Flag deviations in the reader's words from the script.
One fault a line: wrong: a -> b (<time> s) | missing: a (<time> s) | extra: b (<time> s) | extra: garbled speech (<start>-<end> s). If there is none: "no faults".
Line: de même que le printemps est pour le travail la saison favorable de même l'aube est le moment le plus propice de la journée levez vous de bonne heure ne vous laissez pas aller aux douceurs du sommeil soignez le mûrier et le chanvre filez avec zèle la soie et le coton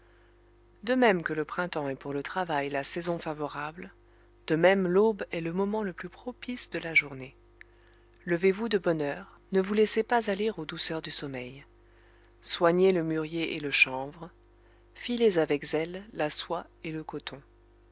no faults